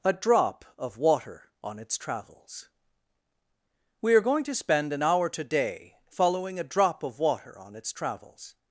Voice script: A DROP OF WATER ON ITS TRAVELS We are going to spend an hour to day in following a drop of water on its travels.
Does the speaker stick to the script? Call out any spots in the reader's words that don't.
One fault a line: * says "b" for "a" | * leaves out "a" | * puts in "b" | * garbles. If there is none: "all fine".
* says "today" for "to day in"